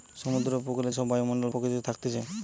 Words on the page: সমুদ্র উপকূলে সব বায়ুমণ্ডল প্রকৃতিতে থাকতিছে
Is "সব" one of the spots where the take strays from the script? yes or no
no